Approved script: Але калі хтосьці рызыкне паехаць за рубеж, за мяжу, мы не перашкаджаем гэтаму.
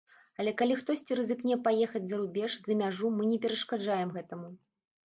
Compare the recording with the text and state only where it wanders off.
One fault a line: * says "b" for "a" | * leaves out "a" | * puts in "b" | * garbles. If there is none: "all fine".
all fine